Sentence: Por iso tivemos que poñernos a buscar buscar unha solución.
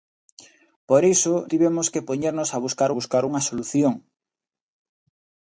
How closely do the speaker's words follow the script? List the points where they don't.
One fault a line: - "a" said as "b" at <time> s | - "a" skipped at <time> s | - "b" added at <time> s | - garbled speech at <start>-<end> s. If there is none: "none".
none